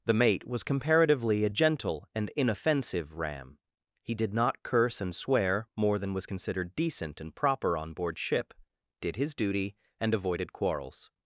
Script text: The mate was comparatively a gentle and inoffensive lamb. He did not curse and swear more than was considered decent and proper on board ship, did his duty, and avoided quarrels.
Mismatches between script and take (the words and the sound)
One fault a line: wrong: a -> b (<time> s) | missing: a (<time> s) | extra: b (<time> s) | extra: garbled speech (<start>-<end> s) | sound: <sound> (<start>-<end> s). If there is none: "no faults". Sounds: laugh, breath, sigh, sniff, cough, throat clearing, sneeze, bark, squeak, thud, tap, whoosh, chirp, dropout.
wrong: lamb -> ram (3.2 s)